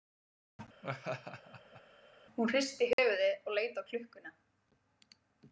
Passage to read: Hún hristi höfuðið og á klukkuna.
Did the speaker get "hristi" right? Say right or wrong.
right